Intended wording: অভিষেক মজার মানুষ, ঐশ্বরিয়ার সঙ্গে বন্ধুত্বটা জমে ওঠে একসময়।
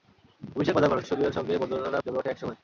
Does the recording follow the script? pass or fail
pass